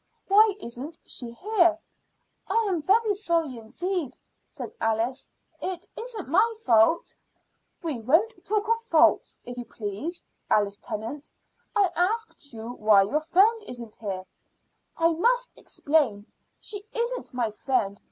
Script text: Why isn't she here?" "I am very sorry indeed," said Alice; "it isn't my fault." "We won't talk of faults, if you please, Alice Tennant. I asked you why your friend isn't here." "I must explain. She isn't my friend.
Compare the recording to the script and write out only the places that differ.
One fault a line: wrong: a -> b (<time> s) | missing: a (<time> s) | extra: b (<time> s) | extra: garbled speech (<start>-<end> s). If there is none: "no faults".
no faults